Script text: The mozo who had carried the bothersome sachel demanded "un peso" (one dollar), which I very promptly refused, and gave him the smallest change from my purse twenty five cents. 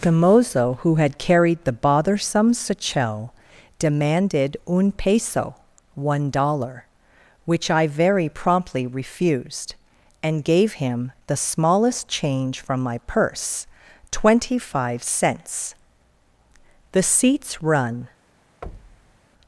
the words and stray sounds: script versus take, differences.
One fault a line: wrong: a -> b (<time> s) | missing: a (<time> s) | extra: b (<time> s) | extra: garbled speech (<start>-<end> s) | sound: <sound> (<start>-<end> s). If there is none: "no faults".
extra: The seats run (16.9 s)
sound: thud (18.6-19.2 s)